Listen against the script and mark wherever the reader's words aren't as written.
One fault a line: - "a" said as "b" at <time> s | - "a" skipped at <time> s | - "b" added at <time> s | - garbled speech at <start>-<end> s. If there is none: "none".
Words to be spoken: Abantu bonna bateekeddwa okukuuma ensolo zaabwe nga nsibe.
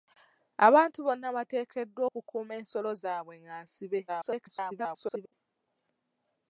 - garbled speech at 4.1-5.3 s